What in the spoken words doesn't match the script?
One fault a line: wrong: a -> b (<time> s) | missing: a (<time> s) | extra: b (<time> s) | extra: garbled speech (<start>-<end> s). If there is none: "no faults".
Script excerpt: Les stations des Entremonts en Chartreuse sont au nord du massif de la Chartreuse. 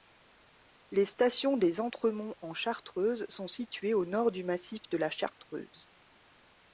extra: situées (3.5 s)